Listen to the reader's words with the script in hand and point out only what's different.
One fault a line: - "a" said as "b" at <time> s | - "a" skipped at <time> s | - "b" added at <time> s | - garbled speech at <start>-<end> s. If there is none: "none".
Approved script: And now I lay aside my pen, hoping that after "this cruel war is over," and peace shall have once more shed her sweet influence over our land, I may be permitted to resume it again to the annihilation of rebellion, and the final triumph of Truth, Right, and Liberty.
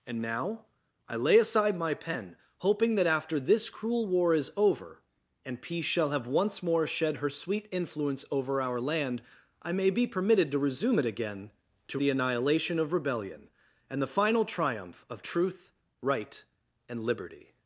none